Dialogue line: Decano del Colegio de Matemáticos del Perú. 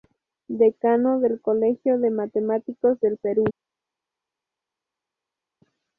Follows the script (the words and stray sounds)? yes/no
yes